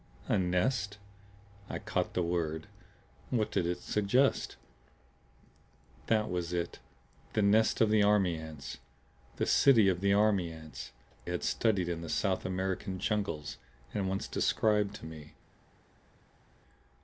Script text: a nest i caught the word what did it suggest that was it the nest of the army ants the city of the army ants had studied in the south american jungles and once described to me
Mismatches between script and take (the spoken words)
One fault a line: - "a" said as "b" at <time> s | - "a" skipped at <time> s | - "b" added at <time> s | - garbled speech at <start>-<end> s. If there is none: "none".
none